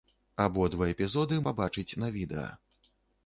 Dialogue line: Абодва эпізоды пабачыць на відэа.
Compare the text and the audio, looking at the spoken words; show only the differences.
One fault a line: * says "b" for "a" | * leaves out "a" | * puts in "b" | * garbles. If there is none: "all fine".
all fine